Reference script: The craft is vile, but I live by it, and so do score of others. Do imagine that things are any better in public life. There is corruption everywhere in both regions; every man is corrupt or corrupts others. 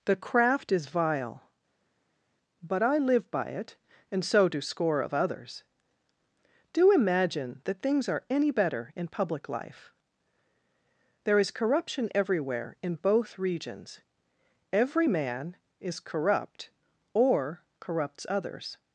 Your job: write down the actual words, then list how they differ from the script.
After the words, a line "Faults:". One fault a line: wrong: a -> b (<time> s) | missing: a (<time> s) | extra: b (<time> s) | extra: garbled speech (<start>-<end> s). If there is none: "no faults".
The craft is vile, but I live by it, and so do score of others. Do imagine that things are any better in public life. There is corruption everywhere in both regions; every man is corrupt or corrupts others.
Faults:
no faults